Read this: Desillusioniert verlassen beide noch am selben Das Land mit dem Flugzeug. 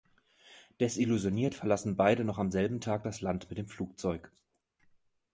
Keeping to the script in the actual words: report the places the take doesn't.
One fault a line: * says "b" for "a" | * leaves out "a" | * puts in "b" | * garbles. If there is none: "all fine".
* puts in "Tag"